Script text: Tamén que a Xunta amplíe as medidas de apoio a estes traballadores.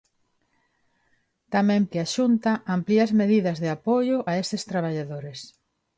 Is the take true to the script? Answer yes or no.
yes